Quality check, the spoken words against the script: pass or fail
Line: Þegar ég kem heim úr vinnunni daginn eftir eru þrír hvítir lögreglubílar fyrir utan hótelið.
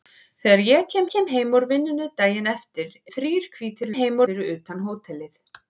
fail